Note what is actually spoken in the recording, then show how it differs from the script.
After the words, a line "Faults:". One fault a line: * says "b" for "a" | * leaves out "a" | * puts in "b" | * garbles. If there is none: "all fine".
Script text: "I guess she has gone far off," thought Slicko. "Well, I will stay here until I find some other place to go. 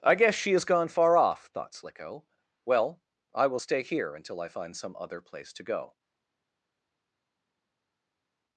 "I guess she has gone far off," thought Slicko. "Well, I will stay here until I find some other place to go.
Faults:
all fine